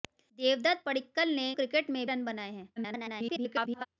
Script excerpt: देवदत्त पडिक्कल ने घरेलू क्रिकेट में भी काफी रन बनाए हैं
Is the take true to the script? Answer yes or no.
no